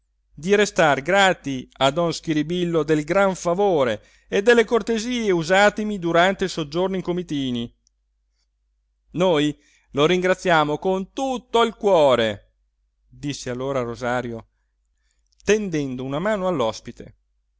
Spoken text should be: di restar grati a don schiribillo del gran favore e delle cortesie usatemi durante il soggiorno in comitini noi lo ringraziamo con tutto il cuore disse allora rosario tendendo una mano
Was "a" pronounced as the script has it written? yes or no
yes